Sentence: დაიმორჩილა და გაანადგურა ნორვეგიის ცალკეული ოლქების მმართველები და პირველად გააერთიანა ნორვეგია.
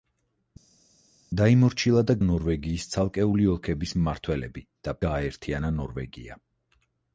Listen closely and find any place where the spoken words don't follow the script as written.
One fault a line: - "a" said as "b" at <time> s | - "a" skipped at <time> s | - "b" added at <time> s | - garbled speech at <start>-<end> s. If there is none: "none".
- "გაანადგურა" skipped at 2.2 s
- "პირველად" skipped at 5.0 s